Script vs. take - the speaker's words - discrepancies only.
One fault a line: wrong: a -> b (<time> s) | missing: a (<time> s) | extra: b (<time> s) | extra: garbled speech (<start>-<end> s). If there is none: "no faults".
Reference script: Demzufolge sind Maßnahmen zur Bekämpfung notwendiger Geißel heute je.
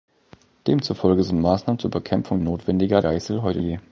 no faults